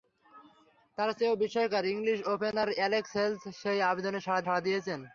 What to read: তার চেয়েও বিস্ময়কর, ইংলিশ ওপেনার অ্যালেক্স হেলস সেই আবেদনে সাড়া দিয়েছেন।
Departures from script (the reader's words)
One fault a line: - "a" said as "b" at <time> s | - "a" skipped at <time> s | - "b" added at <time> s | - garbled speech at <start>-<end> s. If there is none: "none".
- "সাড়া" added at 4.4 s